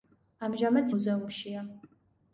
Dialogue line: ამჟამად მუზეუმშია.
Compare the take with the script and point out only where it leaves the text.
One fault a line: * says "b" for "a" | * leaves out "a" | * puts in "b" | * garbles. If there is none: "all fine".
all fine